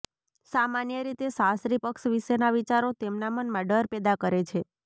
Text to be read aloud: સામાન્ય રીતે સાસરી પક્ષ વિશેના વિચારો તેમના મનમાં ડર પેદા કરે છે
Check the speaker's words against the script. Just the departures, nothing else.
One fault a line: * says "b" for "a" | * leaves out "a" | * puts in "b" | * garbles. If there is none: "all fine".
all fine